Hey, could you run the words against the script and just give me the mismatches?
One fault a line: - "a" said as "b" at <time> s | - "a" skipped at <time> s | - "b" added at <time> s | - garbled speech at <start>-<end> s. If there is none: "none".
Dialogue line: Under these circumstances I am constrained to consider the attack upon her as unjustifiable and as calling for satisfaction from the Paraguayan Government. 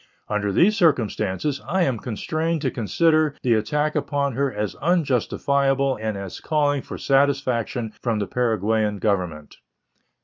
none